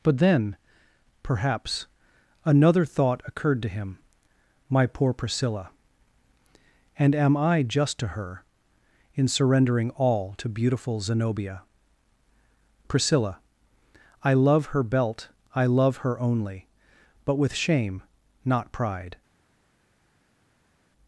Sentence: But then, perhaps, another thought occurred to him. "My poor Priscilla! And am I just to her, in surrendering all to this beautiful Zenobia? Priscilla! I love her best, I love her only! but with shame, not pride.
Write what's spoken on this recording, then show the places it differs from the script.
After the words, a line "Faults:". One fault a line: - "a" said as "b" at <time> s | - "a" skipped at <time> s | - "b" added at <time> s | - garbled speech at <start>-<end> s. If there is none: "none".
But then, perhaps, another thought occurred to him. "My poor Priscilla! And am I just to her, in surrendering all to beautiful Zenobia? Priscilla! I love her belt, I love her only! but with shame, not pride.
Faults:
- "this" skipped at 10.5 s
- "best" said as "belt" at 14.8 s